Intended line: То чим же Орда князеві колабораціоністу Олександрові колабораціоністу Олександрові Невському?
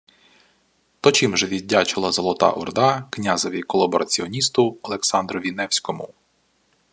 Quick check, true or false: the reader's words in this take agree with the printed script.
false